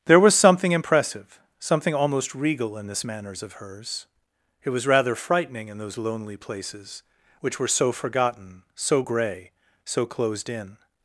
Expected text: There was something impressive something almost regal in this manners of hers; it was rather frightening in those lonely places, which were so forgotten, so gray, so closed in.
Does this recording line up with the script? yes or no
yes